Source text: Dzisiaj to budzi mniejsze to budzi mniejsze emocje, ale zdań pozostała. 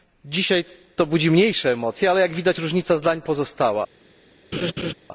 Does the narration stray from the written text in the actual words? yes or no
yes